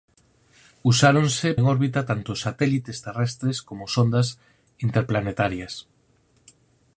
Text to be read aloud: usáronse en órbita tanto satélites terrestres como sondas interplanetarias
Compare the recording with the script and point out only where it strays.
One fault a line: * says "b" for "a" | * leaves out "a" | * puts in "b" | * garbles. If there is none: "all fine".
all fine